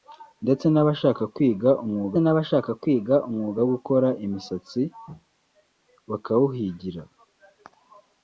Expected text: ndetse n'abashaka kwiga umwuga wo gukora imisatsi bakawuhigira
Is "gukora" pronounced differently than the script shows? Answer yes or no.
no